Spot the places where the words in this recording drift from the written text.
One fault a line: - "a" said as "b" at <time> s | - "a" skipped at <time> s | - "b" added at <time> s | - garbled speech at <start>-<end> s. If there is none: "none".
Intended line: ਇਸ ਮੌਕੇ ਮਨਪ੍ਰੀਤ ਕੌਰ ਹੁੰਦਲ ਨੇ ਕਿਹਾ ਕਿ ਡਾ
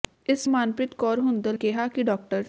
- "ਮੌਕੇ" skipped at 0.5 s
- "ਨੇ" skipped at 1.6 s